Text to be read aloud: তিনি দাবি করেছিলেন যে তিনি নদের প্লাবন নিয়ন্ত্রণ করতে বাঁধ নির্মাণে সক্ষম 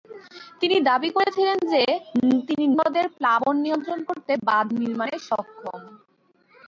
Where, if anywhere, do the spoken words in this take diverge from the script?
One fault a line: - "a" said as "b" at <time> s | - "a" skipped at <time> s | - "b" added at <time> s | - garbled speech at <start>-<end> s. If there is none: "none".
none